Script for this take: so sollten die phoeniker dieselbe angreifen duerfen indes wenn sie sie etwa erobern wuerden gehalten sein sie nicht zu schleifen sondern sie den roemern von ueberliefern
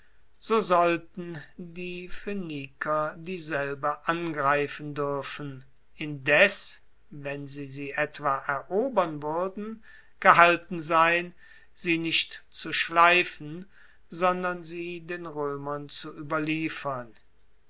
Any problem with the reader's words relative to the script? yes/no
yes